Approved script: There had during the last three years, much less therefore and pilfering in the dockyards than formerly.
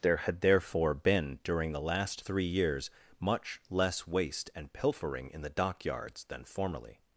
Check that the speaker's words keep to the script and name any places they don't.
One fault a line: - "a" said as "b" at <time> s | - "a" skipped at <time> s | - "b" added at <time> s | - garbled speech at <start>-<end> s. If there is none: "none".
- "therefore been" added at 0.4 s
- "therefore" said as "waste" at 4.1 s